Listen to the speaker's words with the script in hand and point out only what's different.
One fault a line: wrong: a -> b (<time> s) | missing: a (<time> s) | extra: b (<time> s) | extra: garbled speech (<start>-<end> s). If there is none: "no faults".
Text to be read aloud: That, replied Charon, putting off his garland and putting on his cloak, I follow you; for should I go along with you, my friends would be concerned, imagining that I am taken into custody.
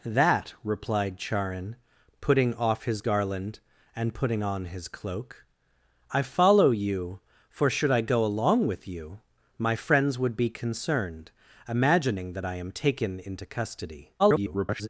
extra: garbled speech (14.2-14.9 s)